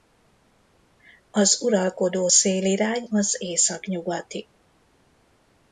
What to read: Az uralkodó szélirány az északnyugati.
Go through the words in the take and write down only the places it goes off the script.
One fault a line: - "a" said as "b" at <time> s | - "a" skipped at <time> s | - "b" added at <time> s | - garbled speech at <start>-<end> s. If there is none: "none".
none